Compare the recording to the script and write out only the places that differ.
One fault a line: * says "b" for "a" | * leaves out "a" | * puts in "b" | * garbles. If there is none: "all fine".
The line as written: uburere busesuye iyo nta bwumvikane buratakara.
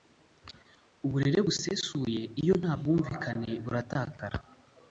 all fine